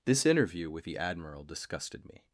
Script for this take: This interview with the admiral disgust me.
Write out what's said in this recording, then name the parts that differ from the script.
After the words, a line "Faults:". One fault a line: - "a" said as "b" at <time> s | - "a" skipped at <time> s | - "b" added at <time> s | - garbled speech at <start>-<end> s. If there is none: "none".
This interview with the admiral disgusted me.
Faults:
- "disgust" said as "disgusted" at 1.4 s